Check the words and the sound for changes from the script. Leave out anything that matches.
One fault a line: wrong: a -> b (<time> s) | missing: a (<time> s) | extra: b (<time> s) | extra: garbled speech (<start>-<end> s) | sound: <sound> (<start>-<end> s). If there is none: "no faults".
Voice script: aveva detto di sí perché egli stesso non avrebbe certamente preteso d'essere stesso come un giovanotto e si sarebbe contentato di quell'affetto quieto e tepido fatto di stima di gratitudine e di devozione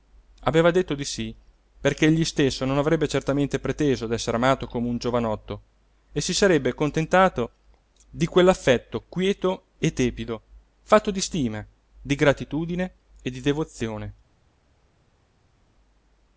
wrong: stesso -> amato (4.4 s)